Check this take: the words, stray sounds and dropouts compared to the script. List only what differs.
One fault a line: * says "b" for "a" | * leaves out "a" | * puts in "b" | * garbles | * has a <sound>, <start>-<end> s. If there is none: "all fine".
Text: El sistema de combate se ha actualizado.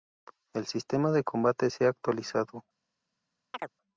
* has a chirp, 3.5-3.7 s